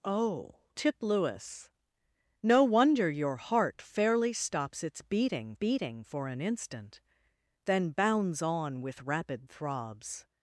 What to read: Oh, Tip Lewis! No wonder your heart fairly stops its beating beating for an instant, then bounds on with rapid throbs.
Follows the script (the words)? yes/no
yes